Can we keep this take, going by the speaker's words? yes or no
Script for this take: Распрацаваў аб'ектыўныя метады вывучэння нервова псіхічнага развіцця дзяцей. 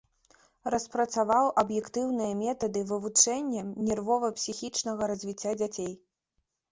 yes